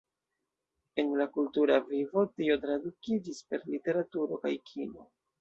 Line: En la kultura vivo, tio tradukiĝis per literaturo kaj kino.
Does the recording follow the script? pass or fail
pass